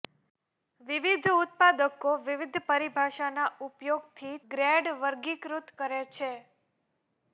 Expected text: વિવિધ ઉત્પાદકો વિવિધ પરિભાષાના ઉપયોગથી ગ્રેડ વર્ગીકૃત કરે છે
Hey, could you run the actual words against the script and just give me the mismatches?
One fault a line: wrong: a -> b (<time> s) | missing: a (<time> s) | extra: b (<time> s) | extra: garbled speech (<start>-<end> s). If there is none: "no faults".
no faults